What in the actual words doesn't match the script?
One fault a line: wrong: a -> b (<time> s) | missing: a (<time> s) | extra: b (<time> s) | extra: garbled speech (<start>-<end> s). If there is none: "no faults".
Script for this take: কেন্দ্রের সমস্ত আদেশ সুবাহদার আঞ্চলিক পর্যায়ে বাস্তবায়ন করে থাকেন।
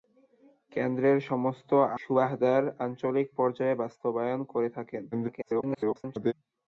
missing: আদেশ (1.7 s)
extra: garbled speech (5.1-6.3 s)